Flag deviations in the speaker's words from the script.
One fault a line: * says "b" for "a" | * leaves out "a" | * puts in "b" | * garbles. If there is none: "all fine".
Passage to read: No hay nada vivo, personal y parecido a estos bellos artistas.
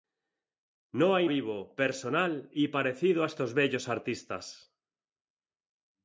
* leaves out "nada"